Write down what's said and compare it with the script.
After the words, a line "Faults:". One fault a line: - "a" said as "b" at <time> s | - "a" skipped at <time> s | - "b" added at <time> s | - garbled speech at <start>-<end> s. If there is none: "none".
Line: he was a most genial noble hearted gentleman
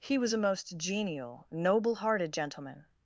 he was a most genial noble hearted gentleman
Faults:
none